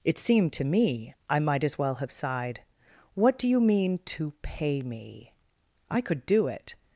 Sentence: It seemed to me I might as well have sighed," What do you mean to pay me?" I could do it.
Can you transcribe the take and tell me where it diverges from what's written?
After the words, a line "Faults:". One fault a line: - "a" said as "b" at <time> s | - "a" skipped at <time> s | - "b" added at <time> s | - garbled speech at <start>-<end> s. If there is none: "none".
It seemed to me I might as well have sighed," What do you mean to pay me?" I could do it.
Faults:
none